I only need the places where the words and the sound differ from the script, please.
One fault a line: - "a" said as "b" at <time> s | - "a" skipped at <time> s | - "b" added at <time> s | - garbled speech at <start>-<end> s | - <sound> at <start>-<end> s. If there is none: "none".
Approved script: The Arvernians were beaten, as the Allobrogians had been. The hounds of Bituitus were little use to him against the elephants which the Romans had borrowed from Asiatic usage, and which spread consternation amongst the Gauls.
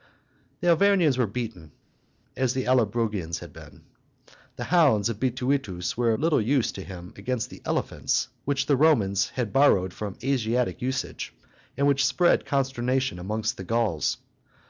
none